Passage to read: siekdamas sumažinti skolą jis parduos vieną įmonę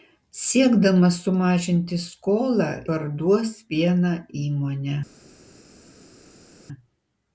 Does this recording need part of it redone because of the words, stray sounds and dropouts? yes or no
yes